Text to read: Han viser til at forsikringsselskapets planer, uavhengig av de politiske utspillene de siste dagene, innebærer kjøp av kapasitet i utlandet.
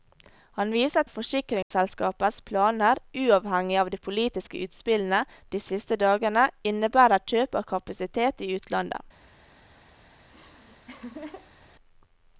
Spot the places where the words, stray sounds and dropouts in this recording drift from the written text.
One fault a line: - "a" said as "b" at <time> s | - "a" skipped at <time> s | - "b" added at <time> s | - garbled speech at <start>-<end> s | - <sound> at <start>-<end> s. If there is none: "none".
- "til" skipped at 1.0 s
- dropout at 1.6-1.7 s
- laugh at 10.2-11.7 s